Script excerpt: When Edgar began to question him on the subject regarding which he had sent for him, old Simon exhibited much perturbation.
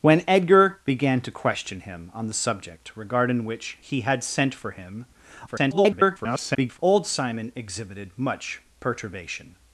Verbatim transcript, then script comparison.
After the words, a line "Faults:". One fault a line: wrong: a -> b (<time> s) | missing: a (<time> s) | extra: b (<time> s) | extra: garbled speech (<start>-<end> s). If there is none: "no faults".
When Edgar began to question him on the subject regarding which he had sent for him, [garbled] old Simon exhibited much perturbation.
Faults:
extra: garbled speech (5.5-6.8 s)